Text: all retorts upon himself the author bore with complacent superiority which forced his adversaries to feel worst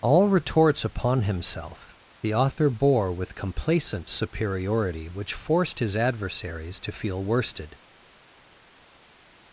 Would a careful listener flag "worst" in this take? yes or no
yes